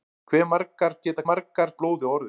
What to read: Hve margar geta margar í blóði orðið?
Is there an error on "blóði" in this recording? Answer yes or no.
no